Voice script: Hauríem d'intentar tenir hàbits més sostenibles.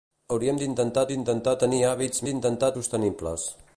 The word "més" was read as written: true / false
false